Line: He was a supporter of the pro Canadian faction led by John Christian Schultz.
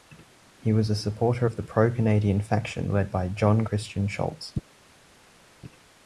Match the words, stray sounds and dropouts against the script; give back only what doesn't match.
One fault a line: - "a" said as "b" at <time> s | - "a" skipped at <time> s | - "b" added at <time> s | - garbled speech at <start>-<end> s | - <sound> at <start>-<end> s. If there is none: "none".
none